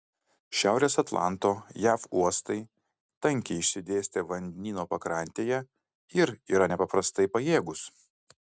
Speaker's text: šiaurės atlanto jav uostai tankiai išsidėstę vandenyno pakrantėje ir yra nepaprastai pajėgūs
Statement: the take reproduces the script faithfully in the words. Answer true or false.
true